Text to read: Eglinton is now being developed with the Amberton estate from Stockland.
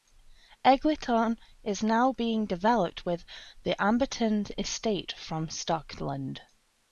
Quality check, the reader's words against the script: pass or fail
pass